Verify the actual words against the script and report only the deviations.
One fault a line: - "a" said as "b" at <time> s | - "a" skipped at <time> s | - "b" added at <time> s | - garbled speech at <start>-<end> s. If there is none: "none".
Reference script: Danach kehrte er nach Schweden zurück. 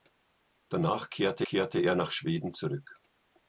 - "kehrte" added at 1.4 s